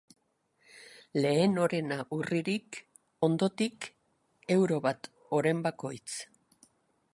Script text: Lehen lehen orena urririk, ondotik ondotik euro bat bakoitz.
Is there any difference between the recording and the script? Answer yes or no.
yes